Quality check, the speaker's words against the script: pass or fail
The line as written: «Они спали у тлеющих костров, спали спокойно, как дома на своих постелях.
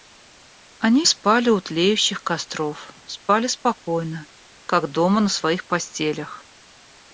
pass